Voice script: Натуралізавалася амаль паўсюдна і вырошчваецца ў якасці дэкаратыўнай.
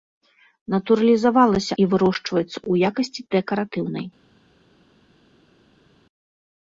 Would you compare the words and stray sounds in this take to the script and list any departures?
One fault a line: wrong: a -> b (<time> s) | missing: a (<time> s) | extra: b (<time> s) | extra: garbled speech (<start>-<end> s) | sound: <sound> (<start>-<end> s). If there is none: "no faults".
missing: амаль паўсюдна (1.7 s)